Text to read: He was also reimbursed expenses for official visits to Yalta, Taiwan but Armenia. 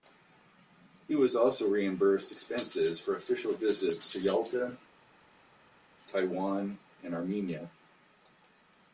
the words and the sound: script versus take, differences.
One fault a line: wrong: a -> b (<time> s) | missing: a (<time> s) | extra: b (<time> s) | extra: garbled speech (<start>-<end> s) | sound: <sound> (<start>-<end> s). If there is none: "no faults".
wrong: but -> and (7.0 s)